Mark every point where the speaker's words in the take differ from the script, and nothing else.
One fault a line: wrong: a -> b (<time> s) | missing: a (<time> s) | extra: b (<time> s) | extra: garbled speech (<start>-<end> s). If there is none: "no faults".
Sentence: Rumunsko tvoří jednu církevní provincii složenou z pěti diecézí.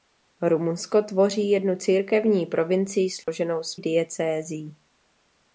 missing: pěti (3.8 s)